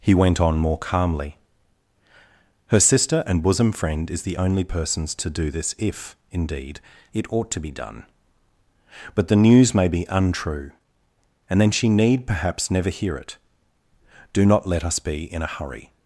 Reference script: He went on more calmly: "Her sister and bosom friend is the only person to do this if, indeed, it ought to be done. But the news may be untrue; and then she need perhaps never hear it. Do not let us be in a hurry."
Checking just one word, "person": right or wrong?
wrong